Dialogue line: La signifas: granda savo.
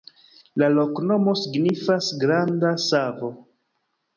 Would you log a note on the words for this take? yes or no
yes